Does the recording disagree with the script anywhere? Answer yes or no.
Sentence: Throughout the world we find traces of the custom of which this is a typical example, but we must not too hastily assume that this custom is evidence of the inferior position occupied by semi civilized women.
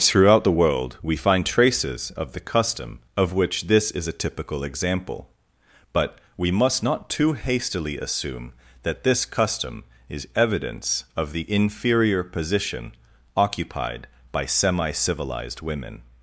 no